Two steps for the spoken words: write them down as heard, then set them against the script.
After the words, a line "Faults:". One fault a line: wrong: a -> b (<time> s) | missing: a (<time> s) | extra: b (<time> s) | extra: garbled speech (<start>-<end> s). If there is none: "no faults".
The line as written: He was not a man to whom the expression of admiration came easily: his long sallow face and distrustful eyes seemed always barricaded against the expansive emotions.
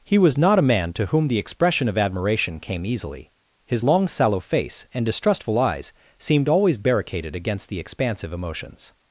He was not a man to whom the expression of admiration came easily: his long sallow face and distrustful eyes seemed always barricaded against the expansive emotions.
Faults:
no faults